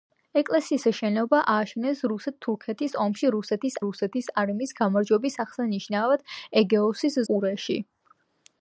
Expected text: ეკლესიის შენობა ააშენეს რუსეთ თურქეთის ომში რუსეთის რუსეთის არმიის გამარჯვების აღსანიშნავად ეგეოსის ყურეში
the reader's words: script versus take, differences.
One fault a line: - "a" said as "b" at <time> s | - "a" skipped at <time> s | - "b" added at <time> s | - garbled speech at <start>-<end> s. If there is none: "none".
none